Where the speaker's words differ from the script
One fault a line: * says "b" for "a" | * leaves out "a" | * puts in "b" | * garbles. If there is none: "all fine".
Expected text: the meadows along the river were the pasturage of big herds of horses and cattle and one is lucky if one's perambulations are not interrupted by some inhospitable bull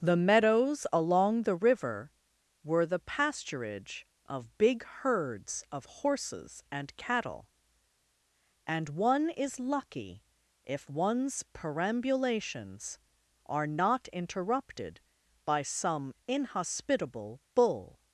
all fine